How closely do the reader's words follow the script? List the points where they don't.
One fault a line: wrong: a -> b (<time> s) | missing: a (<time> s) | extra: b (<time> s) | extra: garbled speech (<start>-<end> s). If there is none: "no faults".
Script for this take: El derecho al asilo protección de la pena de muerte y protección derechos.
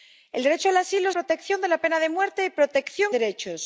no faults